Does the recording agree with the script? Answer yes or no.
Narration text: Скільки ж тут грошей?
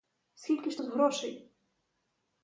yes